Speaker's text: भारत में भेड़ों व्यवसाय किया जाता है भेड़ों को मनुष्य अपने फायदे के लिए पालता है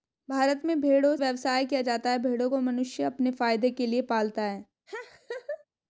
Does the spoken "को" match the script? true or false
true